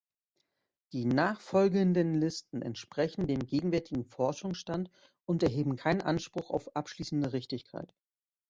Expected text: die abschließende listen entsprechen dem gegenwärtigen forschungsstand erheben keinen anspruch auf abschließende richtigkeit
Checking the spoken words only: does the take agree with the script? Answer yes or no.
no